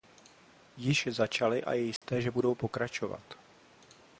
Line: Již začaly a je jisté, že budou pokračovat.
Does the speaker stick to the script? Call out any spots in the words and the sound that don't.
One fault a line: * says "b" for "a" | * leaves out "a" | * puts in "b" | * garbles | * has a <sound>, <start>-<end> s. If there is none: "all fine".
* has a dropout, 2.0-2.0 s